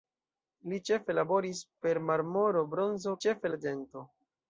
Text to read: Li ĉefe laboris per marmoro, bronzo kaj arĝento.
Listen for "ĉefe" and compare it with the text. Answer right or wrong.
right